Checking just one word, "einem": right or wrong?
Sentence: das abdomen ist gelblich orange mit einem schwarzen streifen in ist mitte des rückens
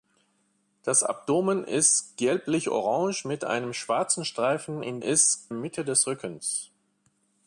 right